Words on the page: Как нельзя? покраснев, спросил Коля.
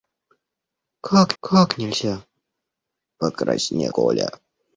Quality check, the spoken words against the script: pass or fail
fail